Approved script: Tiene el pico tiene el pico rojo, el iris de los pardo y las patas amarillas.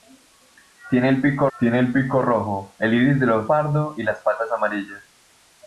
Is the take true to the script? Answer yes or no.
yes